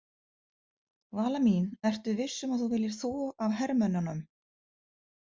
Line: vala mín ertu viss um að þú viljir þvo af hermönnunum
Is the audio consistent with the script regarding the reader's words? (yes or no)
yes